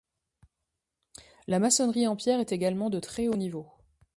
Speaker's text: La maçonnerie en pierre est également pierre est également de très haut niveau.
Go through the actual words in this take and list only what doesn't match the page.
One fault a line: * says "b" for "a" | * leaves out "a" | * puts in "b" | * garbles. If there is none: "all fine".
* leaves out "pierre est également"